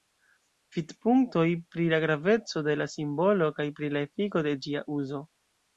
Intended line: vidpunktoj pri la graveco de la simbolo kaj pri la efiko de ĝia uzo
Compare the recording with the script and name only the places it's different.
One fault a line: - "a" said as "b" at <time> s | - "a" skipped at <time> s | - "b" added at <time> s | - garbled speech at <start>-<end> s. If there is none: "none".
none